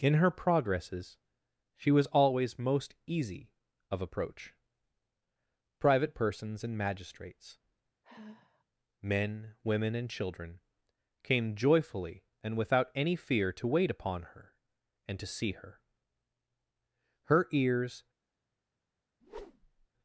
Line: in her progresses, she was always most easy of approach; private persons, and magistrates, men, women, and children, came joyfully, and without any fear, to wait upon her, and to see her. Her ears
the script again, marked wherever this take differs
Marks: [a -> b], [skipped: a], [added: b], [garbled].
in her progresses, she was always most easy of approach; private persons, and magistrates, men, women, and children, came joyfully, and without any fear, to wait upon her, and to see her. Her ears